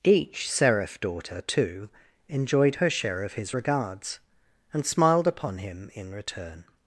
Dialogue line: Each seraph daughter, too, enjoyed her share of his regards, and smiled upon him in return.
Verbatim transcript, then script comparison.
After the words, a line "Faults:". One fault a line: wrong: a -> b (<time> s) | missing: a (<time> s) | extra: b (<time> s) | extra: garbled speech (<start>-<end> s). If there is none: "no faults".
Each seraph daughter, too, enjoyed her share of his regards, and smiled upon him in return.
Faults:
no faults